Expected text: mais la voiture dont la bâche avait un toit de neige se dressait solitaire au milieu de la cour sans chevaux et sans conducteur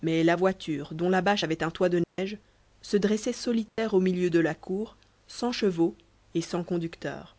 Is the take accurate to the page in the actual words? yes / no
yes